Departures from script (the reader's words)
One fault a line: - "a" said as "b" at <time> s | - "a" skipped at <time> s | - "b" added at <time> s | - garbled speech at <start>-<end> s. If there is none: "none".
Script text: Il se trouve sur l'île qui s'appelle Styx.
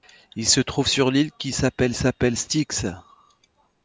- "s'appelle" added at 1.9 s